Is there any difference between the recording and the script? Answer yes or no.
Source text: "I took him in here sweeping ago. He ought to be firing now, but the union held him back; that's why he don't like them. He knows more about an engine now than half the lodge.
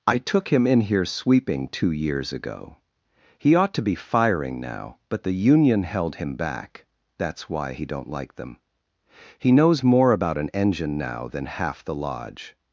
yes